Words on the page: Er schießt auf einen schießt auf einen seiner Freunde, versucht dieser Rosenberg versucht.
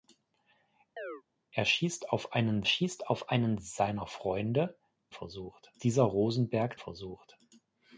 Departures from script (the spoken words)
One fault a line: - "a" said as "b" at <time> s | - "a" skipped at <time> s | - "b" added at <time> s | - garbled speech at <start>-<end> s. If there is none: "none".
none